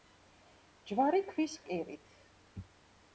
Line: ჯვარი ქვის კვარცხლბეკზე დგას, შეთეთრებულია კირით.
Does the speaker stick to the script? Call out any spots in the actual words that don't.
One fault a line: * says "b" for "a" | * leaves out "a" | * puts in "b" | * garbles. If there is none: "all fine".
* leaves out "კვარცხლბეკზე დგას შეთეთრებულია"